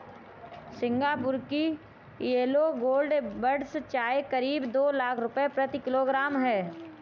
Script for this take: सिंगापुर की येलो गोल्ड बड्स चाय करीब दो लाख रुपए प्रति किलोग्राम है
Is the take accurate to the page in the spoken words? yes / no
yes